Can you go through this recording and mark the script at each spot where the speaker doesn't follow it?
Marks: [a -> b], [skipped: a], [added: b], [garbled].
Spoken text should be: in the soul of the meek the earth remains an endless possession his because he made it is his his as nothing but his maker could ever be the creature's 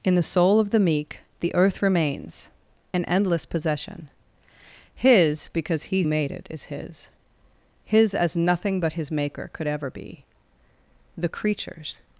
in the soul of the meek the earth remains an endless possession his because he made it is his his as nothing but his maker could ever be the creature's